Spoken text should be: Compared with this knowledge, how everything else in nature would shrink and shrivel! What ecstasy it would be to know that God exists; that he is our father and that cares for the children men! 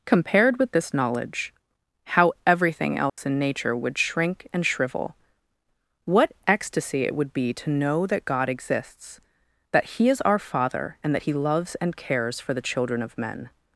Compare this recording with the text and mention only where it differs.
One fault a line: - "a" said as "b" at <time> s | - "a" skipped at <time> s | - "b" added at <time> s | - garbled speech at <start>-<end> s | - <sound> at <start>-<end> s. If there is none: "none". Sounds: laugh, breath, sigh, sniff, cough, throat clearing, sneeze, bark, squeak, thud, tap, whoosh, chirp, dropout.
- dropout at 3.1-3.2 s
- "he loves and" added at 11.2 s
- "of" added at 13.0 s